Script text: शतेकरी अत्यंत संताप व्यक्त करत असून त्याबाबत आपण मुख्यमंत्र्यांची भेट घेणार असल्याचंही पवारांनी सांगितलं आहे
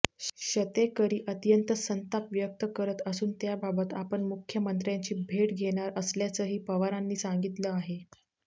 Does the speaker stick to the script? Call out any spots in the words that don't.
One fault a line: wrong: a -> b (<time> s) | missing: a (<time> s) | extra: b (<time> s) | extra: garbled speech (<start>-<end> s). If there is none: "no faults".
no faults